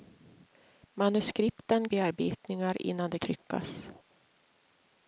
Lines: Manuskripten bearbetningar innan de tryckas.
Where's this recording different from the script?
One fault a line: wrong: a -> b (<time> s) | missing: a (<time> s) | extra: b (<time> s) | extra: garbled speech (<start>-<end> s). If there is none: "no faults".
no faults